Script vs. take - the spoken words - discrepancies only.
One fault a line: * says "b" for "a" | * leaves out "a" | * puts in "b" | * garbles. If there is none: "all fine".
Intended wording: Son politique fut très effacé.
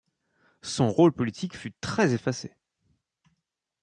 * puts in "rôle"